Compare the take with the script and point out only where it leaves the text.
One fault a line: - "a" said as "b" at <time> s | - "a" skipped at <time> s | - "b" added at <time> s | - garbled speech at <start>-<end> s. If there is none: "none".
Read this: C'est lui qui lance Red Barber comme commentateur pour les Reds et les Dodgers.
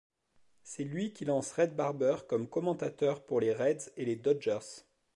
none